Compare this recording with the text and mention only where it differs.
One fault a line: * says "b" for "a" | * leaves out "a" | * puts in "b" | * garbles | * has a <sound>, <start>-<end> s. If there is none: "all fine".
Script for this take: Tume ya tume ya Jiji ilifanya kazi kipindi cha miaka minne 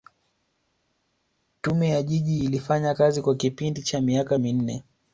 * leaves out "tume ya"
* puts in "kwa"